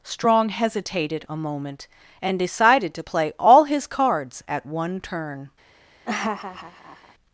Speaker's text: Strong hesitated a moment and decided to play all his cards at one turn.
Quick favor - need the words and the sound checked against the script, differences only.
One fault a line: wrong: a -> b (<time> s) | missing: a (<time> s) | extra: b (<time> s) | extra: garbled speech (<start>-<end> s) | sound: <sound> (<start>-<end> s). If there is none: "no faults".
sound: laugh (6.1-7.1 s)